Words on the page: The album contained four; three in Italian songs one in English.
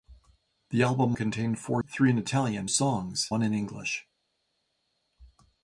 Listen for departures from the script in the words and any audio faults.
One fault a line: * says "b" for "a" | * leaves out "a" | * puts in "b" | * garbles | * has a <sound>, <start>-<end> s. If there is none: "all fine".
all fine